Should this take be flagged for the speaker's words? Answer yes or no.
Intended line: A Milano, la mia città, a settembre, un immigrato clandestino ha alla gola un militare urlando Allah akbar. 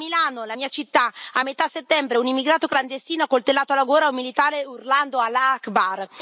yes